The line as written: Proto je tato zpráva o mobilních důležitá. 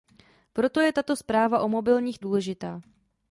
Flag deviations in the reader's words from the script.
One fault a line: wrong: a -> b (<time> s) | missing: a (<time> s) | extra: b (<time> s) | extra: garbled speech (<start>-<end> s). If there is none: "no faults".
no faults